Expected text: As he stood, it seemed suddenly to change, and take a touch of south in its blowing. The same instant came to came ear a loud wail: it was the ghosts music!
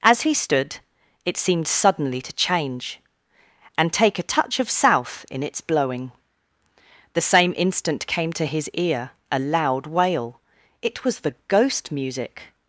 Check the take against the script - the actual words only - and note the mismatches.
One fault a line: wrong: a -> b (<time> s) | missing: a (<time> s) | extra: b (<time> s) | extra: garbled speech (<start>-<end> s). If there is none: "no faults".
wrong: came -> his (8.4 s)
wrong: ghosts -> ghost (11.5 s)